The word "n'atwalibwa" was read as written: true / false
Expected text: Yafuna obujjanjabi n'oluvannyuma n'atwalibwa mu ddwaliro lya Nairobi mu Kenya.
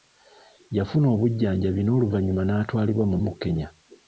true